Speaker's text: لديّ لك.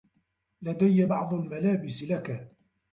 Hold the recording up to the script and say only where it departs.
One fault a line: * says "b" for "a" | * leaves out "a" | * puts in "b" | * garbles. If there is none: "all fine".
* puts in "بعض الملابس"